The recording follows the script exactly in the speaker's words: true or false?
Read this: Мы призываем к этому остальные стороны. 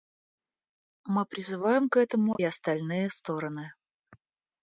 true